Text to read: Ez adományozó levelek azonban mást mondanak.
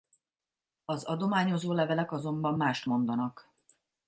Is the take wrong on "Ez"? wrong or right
wrong